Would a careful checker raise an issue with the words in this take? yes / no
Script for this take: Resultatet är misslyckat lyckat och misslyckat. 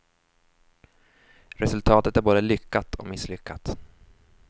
yes